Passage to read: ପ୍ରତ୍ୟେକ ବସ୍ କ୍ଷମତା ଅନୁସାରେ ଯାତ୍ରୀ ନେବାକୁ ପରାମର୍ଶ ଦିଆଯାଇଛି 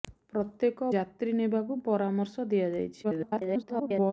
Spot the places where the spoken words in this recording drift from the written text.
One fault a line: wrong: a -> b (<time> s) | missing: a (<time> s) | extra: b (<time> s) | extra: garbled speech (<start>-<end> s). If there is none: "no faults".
missing: ବସ୍ କ୍ଷମତା ଅନୁସାରେ (0.9 s)
extra: garbled speech (3.0-4.1 s)